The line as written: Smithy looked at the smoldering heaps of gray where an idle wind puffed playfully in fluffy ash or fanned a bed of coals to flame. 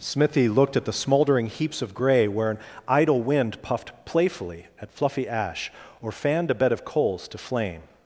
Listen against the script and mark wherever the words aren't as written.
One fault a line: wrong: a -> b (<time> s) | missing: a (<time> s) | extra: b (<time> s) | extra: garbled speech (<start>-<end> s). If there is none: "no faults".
wrong: in -> at (4.8 s)